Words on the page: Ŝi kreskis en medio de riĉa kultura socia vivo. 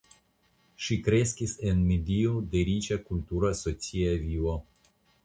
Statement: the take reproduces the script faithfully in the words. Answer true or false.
true